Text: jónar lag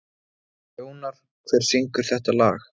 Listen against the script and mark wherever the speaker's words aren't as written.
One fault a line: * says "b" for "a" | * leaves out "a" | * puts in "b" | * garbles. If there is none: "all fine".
* puts in "hver syngur þetta"